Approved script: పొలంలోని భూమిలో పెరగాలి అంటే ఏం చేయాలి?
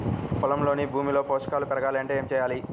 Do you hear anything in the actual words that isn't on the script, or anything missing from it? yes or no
yes